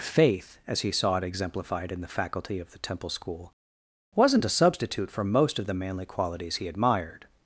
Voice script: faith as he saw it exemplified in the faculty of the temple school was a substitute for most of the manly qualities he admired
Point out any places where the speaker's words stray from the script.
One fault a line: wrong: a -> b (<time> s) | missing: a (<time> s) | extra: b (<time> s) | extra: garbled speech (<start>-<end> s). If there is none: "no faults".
wrong: was -> wasn't (4.2 s)